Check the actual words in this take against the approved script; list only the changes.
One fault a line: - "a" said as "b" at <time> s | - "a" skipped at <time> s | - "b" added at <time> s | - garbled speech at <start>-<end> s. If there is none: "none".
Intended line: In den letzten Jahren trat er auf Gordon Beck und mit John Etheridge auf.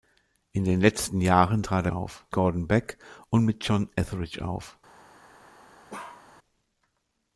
none